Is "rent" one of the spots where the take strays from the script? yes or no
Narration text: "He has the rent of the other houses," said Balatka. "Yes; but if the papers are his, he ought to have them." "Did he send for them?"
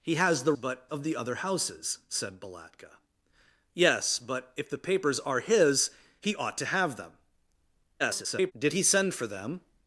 yes